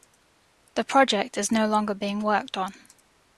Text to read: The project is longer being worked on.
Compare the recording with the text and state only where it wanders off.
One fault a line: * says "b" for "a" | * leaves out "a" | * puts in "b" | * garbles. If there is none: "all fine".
* puts in "no"